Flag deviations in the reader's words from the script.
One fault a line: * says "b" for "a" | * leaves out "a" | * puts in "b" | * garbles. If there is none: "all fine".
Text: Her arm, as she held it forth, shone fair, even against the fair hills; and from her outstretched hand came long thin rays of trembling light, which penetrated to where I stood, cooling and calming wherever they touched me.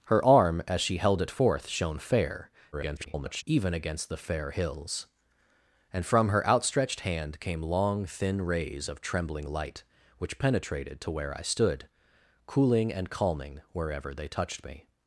* garbles